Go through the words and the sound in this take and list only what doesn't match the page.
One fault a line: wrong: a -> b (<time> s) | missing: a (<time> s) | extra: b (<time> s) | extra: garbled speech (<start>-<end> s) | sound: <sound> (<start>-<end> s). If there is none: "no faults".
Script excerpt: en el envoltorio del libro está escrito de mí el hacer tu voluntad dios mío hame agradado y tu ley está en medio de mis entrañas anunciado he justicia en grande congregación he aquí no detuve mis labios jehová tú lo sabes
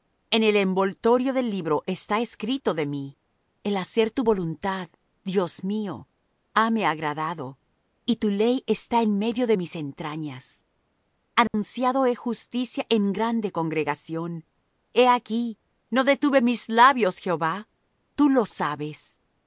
sound: dropout (11.5-11.5 s)